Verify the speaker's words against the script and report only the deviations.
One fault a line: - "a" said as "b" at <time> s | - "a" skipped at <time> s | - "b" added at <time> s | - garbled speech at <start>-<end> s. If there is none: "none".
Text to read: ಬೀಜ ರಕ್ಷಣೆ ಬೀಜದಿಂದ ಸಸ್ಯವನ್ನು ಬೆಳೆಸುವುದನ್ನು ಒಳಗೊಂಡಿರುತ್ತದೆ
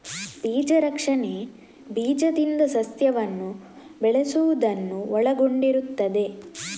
none